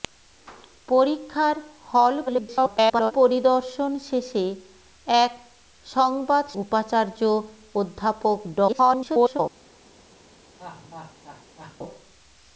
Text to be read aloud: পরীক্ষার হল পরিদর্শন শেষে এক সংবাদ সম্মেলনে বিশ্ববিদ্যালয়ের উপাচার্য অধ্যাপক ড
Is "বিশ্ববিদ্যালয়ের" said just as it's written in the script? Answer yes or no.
no